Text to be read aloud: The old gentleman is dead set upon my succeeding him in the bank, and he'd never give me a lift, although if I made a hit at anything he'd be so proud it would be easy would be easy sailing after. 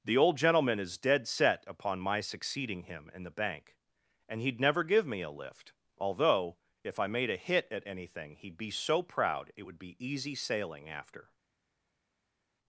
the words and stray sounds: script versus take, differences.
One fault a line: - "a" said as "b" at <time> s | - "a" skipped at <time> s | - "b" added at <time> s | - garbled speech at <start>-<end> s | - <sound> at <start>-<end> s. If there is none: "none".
- "would be easy" skipped at 10.4 s